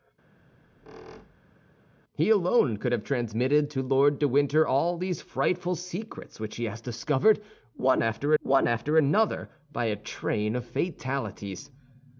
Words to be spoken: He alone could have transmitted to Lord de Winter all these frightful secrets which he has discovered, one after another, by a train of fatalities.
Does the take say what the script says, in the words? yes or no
no